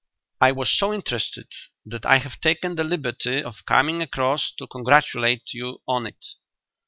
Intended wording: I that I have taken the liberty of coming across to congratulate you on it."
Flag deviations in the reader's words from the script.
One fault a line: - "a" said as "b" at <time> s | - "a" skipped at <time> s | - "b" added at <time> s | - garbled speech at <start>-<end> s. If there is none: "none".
- "was so interested" added at 0.5 s